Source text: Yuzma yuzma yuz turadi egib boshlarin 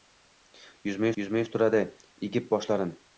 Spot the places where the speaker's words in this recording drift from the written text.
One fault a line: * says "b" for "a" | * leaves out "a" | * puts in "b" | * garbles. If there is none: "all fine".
all fine